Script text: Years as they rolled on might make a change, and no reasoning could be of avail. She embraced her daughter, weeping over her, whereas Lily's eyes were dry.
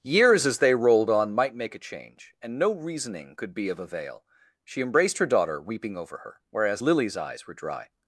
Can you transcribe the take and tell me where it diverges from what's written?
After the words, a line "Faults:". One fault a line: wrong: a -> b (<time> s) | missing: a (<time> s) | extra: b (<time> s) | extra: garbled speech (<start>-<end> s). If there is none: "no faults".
Years as they rolled on might make a change, and no reasoning could be of avail. She embraced her daughter, weeping over her, whereas Lily's eyes were dry.
Faults:
no faults